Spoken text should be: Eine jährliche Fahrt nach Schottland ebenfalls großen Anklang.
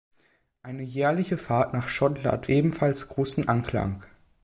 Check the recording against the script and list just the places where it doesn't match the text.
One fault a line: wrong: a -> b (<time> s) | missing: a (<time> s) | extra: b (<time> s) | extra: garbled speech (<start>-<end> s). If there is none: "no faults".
no faults